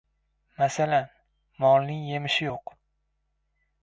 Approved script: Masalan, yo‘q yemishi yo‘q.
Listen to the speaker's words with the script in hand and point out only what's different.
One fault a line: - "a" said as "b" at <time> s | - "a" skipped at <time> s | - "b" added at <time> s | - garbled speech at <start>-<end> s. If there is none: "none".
- "yo‘q" said as "molning" at 1.6 s